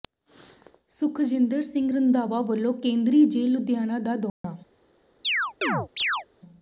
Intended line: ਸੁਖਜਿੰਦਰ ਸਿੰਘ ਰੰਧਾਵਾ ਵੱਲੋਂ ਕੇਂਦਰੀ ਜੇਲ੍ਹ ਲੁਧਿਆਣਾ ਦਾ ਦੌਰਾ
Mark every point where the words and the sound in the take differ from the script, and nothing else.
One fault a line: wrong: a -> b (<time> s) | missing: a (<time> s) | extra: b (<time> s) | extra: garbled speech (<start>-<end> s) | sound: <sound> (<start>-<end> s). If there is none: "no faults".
sound: dropout (4.3-4.4 s)
sound: chirp (5.2-6.3 s)